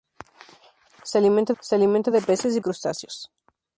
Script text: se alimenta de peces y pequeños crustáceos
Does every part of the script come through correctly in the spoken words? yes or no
no